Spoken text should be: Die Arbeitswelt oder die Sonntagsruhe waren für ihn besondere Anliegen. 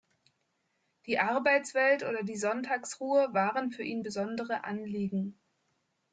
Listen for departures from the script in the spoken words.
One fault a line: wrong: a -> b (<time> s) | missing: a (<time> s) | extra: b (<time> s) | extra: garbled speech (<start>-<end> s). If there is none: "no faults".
no faults